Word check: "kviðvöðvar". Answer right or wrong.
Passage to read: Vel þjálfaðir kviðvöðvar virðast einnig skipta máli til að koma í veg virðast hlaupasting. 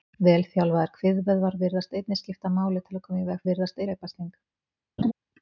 right